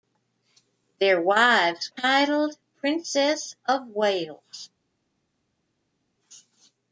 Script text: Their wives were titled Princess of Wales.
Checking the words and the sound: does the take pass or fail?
fail